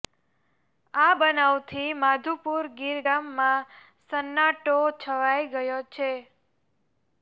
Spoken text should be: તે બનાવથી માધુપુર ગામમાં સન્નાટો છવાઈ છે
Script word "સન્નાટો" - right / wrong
right